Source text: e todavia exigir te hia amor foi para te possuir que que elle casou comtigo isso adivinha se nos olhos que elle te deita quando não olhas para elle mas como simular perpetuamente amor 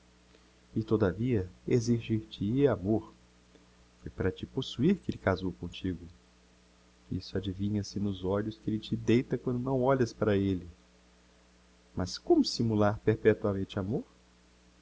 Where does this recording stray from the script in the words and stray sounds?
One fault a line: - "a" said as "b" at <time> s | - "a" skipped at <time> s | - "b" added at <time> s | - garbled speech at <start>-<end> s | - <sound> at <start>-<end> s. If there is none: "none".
- "que" skipped at 5.1 s